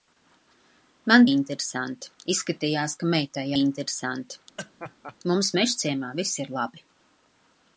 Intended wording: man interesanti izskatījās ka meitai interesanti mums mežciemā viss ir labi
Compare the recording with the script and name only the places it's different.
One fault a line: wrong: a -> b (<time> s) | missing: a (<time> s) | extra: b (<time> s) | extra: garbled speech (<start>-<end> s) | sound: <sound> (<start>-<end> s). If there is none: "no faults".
sound: laugh (4.6-5.2 s)